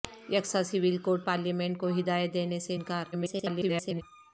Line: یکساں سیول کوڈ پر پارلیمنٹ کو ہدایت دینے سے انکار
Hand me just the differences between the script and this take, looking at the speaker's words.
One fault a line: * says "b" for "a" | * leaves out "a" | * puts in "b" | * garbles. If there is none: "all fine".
* leaves out "پر"
* garbles